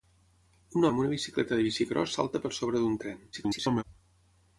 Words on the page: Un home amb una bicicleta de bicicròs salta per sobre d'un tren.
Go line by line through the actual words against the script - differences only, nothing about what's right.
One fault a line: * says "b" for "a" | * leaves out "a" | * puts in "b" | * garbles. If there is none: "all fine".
* leaves out "home"
* garbles